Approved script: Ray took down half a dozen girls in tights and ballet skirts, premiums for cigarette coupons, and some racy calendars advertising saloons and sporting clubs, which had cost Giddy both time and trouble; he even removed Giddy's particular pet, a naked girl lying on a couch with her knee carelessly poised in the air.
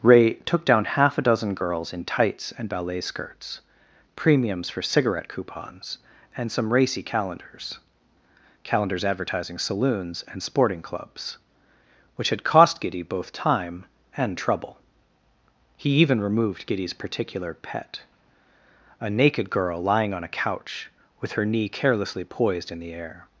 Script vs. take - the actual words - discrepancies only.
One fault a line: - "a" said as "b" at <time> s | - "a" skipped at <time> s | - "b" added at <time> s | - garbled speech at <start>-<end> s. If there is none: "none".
- "calendars" added at 8.6 s